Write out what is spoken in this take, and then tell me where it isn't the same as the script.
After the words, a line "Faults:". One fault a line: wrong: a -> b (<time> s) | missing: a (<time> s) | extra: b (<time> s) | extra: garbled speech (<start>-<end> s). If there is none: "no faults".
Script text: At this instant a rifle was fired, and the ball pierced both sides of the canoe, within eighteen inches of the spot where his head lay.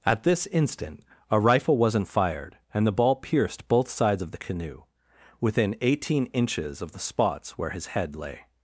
At this instant a rifle wasn't fired, and the ball pierced both sides of the canoe, within eighteen inches of the spots where his head lay.
Faults:
wrong: was -> wasn't (1.8 s)
wrong: spot -> spots (7.0 s)